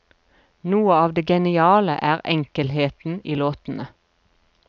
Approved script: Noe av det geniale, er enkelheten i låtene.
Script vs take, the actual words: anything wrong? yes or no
no